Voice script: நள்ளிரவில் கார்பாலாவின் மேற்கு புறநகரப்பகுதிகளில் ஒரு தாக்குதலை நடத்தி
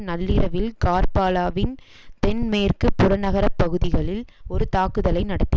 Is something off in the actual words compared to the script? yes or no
yes